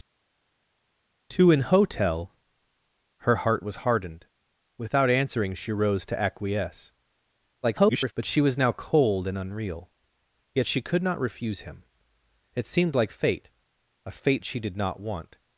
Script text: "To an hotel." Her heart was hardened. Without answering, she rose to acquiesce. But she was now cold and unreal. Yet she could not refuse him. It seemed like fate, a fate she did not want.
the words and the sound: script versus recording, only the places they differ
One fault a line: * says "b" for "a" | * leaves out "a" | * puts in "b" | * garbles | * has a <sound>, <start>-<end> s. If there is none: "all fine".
* garbles